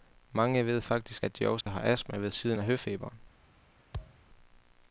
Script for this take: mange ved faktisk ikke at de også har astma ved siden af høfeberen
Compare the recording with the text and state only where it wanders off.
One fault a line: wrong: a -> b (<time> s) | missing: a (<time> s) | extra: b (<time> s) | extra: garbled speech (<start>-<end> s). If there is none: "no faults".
missing: ikke (1.2 s)